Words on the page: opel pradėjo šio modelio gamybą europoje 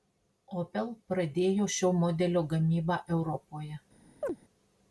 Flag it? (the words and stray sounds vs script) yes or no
yes